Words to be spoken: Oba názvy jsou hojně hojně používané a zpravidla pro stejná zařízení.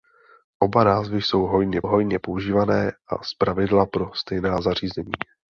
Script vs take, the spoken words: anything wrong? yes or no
no